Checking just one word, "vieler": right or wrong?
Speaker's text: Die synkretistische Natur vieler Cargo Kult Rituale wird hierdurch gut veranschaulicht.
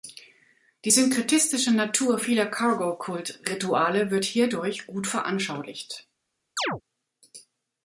right